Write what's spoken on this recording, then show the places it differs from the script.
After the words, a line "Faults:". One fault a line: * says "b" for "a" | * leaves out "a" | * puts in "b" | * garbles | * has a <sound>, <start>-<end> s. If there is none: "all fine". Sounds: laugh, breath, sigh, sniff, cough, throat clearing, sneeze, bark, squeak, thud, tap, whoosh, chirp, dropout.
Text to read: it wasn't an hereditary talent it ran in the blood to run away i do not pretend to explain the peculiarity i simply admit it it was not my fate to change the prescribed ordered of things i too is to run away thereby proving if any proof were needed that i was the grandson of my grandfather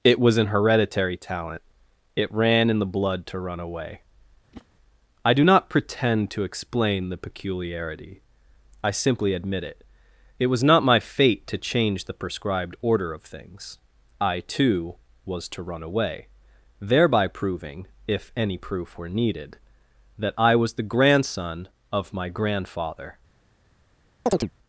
it was an hereditary talent it ran in the blood to run away i do not pretend to explain the peculiarity i simply admit it it was not my fate to change the prescribed order of things i too was to run away thereby proving if any proof were needed that i was the grandson of my grandfather
Faults:
* says "was" for "wasn't"
* has a whoosh, 4.5-4.7 s
* says "order" for "ordered"
* says "was" for "is"
* has a chirp, 24.3-24.5 s